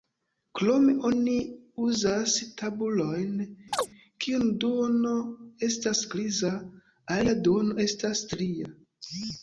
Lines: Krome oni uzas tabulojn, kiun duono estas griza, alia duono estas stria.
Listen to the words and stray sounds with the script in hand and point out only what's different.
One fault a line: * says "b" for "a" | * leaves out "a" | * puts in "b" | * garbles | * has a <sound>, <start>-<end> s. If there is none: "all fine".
* has a chirp, 3.7-3.9 s